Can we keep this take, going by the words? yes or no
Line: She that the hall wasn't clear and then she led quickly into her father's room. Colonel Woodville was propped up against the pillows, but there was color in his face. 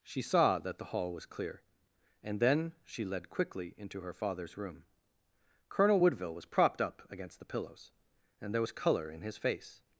no